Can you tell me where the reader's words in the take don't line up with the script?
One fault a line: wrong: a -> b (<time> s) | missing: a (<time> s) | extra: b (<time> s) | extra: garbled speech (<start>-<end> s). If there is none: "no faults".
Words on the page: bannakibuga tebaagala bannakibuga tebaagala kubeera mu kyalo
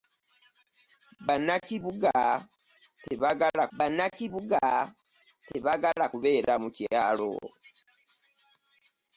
no faults